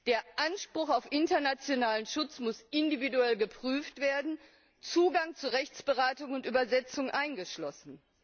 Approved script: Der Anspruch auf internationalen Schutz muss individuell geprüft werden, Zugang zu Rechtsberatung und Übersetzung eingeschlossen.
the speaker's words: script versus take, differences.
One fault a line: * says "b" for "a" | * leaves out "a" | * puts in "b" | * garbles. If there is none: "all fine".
all fine